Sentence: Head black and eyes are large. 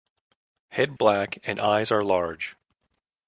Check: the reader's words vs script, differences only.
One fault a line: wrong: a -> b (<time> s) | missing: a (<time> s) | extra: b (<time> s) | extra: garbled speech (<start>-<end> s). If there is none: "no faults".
no faults